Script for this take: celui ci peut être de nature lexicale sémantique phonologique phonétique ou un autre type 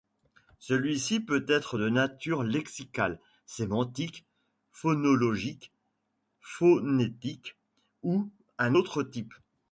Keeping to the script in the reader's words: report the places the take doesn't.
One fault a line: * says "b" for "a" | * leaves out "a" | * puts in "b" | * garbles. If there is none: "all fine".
all fine